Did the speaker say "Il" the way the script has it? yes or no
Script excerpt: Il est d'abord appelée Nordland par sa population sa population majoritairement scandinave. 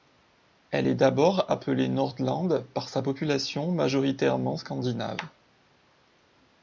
no